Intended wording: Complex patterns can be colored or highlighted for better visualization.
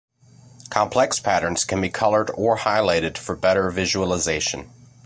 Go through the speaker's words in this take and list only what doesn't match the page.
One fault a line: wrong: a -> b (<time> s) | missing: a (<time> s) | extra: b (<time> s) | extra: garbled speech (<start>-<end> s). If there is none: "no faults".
no faults